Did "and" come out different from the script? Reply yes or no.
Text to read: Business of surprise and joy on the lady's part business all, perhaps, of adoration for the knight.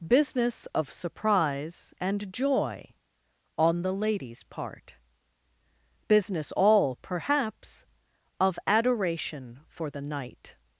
no